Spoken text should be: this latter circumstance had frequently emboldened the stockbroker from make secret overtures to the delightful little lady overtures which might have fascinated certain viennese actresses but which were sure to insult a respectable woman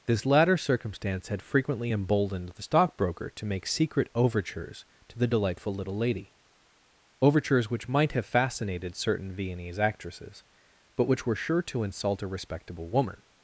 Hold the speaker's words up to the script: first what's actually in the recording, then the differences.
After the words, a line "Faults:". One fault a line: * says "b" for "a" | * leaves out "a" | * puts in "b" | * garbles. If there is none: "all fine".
this latter circumstance had frequently emboldened the stockbroker to make secret overtures to the delightful little lady overtures which might have fascinated certain viennese actresses but which were sure to insult a respectable woman
Faults:
* says "to" for "from"